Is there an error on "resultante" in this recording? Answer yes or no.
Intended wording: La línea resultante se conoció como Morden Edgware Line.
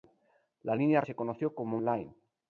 yes